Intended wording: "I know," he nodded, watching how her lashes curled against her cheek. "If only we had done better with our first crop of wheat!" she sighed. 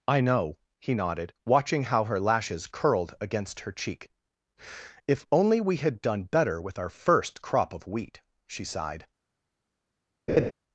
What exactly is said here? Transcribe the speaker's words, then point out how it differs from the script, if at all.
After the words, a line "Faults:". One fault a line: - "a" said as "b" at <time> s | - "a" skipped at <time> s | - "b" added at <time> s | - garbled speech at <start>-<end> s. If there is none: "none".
"I know," he nodded, watching how her lashes curled against her cheek. "If only we had done better with our first crop of wheat!" she sighed.
Faults:
none